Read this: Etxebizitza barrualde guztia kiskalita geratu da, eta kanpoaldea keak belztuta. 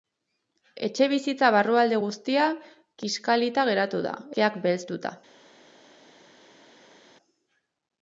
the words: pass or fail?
fail